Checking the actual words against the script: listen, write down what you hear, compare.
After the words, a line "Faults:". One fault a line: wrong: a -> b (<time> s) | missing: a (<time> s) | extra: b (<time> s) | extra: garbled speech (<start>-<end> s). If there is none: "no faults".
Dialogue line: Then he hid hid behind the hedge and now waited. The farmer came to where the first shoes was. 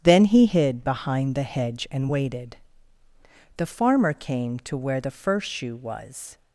Then he hid behind the hedge and waited. The farmer came to where the first shoe was.
Faults:
missing: hid (0.8 s)
missing: now (2.1 s)
wrong: shoes -> shoe (5.5 s)